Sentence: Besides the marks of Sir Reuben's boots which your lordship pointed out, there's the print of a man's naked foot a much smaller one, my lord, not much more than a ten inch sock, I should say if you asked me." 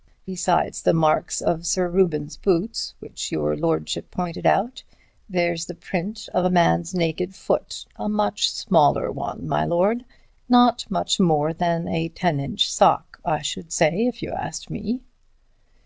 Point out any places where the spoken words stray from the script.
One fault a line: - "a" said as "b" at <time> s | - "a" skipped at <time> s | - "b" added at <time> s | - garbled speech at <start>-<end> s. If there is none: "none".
none